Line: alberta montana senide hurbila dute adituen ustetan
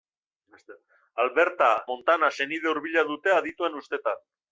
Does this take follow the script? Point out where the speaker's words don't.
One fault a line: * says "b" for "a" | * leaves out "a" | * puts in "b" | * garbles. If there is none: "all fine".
all fine